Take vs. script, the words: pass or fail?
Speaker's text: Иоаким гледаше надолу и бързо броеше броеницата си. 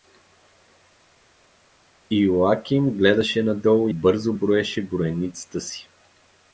fail